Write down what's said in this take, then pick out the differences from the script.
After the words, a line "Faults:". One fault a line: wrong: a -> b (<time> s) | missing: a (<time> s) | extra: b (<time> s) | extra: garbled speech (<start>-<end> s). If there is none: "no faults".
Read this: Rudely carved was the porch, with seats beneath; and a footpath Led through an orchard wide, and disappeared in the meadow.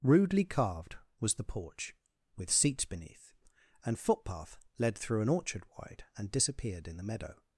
Rudely carved was the porch, with seats beneath; and footpath Led through an orchard wide, and disappeared in the meadow.
Faults:
missing: a (4.0 s)